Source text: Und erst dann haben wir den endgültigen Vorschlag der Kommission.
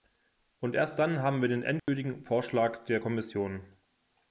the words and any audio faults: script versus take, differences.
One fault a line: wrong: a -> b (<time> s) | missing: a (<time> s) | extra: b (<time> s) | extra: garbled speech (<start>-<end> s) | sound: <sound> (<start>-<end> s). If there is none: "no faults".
sound: dropout (1.8-1.9 s)